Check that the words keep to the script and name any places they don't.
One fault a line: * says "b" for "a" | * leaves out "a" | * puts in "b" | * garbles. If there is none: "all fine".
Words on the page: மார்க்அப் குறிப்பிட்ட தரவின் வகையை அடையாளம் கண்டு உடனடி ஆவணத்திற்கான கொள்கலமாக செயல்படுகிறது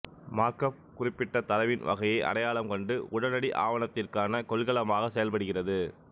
all fine